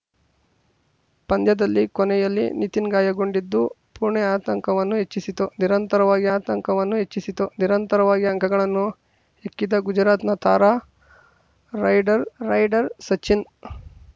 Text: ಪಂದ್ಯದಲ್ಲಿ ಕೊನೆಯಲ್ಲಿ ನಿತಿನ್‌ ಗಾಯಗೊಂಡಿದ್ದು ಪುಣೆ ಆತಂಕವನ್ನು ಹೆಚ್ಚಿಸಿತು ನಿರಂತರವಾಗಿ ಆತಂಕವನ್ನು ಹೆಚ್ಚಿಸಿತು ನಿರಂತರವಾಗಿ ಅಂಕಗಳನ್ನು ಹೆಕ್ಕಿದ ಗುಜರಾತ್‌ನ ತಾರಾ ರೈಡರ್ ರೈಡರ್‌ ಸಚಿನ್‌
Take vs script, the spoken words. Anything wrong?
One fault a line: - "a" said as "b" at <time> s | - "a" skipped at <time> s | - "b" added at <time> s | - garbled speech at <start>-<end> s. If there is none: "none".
none